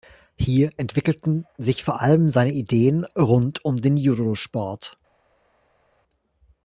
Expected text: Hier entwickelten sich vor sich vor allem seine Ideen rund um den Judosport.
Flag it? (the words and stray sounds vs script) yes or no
yes